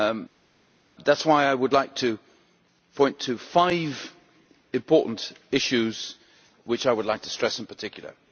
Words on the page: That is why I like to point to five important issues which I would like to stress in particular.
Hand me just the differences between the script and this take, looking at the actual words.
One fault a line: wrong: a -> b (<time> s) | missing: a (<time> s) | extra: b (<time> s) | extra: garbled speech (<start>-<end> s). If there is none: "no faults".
extra: would (1.5 s)